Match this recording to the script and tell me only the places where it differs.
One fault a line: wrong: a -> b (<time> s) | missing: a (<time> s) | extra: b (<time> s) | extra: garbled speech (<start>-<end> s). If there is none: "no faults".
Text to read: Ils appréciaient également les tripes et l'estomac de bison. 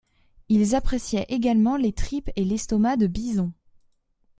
no faults